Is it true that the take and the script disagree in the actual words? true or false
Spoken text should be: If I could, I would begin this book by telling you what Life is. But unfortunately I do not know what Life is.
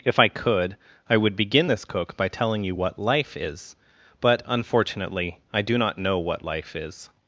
true